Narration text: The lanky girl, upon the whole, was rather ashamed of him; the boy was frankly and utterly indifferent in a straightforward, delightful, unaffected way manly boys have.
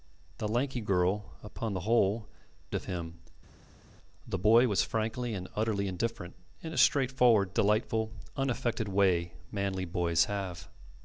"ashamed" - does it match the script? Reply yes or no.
no